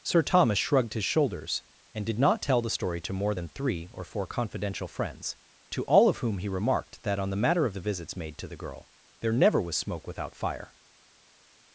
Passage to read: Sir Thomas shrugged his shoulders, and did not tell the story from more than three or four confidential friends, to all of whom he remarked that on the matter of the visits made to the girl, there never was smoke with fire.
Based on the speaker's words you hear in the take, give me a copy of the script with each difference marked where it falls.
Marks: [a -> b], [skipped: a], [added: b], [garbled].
Sir Thomas shrugged his shoulders, and did not tell the story [from -> to] more than three or four confidential friends, to all of whom he remarked that on the matter of the visits made to the girl, there never was smoke [with -> without] fire.